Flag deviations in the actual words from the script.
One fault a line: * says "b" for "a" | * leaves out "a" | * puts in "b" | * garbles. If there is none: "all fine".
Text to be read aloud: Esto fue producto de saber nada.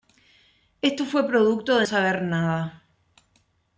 all fine